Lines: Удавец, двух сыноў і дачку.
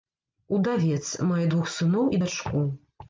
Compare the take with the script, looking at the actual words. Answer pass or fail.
fail